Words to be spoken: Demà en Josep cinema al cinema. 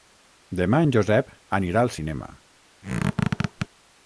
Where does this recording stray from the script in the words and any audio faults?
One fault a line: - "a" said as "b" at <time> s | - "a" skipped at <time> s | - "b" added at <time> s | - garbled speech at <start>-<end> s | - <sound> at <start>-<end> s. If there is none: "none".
- "cinema" said as "anirà" at 1.6 s
- squeak at 2.8-3.7 s